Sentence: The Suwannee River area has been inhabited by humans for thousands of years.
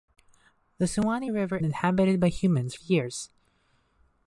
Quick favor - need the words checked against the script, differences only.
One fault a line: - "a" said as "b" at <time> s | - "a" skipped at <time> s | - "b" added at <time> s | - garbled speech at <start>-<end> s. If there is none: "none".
- "area has been" skipped at 1.6 s
- "for thousands" skipped at 2.7 s